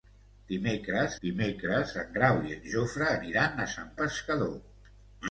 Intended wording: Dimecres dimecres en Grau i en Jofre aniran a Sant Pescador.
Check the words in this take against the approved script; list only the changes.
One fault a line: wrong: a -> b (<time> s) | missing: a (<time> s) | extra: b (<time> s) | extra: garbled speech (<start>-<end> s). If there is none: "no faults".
no faults